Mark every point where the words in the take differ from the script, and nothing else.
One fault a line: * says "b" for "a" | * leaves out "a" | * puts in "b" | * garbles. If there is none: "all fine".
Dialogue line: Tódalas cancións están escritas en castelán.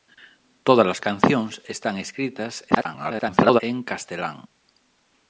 * garbles